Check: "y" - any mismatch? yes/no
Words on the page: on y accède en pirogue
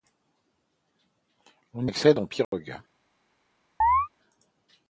yes